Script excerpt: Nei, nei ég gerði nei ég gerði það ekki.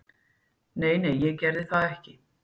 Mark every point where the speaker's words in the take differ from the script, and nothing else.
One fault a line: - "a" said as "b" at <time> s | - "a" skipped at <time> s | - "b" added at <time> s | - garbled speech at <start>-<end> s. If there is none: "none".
- "nei ég gerði" skipped at 1.6 s